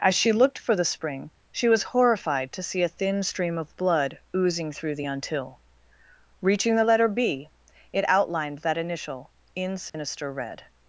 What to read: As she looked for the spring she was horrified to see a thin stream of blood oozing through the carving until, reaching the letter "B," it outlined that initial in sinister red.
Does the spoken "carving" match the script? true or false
false